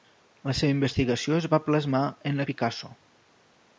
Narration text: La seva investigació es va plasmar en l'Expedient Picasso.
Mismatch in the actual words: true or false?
true